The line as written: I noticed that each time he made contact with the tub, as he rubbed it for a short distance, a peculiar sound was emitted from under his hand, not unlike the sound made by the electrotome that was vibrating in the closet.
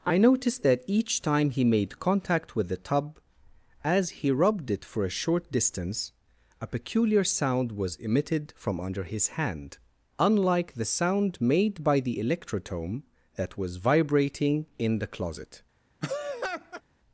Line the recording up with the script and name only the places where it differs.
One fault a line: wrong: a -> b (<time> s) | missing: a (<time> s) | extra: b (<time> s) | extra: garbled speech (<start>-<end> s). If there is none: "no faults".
missing: not (9.8 s)